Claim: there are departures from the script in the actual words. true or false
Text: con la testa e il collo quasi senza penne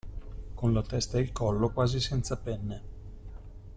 false